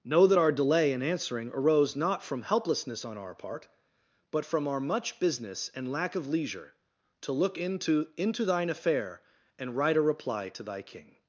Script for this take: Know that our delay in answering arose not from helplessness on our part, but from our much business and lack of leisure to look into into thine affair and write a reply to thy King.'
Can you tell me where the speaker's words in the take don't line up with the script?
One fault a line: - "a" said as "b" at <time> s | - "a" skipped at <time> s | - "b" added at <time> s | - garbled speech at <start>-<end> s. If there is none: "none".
none